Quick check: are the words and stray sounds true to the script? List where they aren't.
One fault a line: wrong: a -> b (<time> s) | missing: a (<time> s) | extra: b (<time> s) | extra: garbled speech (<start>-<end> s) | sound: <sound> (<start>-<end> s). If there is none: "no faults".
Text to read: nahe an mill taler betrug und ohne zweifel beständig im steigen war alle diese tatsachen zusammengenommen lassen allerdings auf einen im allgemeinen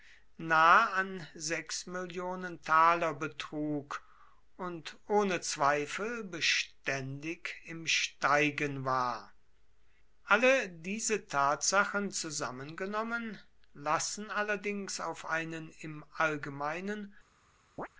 sound: chirp (17.8-17.9 s)